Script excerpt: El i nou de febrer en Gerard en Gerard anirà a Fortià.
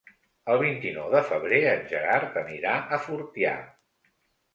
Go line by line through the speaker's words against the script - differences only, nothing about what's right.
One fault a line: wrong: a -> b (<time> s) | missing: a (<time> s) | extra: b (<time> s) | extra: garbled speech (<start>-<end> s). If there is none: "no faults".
extra: vint (0.6 s)
missing: en Gerard (2.4 s)